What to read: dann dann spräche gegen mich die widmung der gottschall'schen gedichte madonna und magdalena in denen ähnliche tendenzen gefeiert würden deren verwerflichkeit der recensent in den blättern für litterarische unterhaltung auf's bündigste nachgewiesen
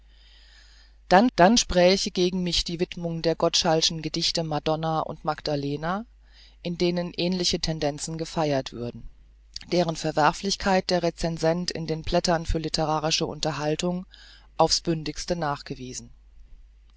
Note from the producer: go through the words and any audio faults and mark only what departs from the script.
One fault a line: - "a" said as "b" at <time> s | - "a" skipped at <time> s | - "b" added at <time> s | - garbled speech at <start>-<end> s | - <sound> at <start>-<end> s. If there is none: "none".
none